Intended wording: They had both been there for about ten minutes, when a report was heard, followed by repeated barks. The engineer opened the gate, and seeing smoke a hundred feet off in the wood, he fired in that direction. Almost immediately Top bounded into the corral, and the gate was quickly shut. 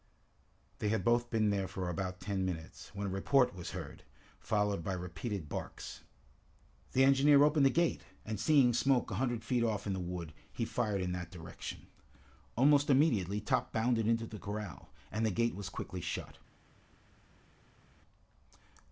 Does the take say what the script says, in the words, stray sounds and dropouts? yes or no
yes